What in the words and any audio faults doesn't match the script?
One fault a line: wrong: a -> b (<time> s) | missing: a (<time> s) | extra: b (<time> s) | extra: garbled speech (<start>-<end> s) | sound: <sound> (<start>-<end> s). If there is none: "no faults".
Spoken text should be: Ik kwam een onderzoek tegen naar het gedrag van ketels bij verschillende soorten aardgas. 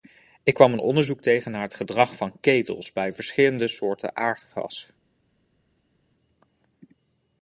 no faults